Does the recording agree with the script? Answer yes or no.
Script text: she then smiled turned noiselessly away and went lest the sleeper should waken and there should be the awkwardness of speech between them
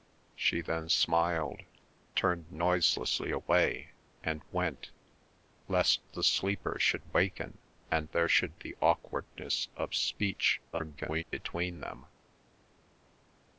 no